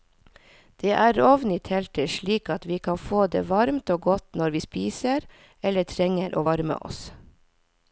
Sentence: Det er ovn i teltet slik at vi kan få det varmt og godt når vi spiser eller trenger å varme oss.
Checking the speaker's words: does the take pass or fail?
pass